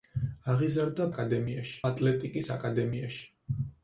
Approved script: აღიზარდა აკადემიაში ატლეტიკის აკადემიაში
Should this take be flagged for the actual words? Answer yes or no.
no